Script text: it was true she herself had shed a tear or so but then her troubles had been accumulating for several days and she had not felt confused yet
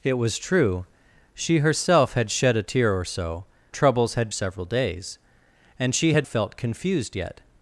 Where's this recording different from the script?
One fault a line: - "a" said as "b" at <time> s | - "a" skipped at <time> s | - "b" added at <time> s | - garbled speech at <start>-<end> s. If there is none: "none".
- "but then her" skipped at 3.5 s
- "been accumulating for" skipped at 4.3 s
- "not" skipped at 6.3 s